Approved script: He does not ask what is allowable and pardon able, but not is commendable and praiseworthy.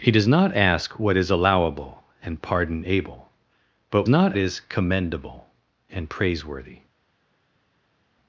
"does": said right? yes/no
yes